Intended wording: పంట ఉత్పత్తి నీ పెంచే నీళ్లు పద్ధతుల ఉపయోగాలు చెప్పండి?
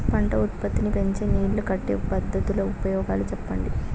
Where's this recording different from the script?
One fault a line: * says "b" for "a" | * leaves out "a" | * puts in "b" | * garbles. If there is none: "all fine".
* puts in "కట్టే"